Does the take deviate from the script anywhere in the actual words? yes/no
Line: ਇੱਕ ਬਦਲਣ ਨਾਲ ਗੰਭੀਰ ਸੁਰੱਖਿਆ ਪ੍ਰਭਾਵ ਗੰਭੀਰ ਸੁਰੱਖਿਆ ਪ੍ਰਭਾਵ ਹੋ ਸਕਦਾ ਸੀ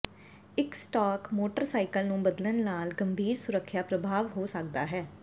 yes